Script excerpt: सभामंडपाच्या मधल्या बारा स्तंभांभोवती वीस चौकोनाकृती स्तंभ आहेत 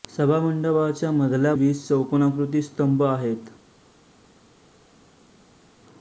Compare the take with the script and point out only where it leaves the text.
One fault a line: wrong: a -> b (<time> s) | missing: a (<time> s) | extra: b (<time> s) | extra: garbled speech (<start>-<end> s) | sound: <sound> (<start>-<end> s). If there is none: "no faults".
missing: बारा स्तंभांभोवती (1.5 s)